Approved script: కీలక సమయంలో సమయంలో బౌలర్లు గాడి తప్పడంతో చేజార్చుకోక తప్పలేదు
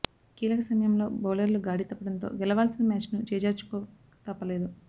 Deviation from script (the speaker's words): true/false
true